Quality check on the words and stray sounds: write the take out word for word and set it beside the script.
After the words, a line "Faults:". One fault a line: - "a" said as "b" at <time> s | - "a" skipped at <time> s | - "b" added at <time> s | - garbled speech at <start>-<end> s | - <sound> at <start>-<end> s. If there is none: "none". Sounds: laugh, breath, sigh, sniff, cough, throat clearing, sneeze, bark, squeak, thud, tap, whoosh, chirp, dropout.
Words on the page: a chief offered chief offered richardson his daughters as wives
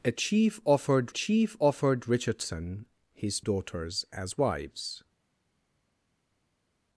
a chief offered chief offered richardson his daughters as wives
Faults:
none